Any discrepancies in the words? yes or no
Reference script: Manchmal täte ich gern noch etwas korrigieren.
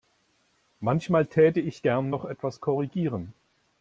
no